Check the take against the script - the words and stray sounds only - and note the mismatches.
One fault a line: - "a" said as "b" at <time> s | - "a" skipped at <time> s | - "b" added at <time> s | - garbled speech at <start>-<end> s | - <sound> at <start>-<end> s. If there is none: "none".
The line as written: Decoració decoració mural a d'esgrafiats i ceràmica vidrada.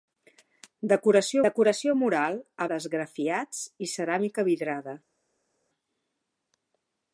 none